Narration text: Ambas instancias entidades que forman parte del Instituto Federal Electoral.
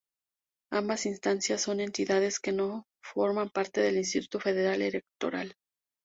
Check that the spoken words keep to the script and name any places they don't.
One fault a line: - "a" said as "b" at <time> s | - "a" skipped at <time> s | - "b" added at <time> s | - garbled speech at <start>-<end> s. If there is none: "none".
- "son" added at 1.6 s
- "no" added at 2.5 s